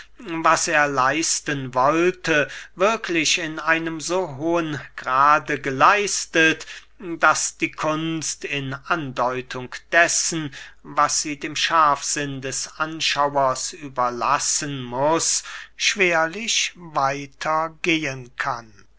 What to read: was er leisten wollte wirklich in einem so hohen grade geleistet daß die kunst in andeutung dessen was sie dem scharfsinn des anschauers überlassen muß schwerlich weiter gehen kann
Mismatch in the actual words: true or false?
false